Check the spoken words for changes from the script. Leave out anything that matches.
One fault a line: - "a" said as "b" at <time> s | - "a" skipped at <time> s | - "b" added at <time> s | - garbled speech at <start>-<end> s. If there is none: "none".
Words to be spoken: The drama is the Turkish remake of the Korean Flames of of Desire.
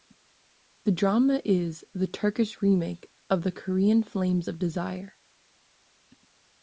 - "of" skipped at 4.6 s